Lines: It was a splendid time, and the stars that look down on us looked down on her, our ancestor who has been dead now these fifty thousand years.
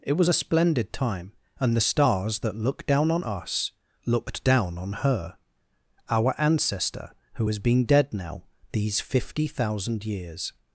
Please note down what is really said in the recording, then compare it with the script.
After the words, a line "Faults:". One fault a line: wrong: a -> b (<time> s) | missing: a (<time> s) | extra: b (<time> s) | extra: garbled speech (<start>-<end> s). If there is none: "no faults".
It was a splendid time, and the stars that look down on us looked down on her, our ancestor who has been dead now these fifty thousand years.
Faults:
no faults